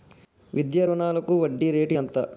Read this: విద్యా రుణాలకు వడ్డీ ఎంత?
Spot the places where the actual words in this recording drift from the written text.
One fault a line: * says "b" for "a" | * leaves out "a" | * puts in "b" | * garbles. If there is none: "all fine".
* puts in "రేటు"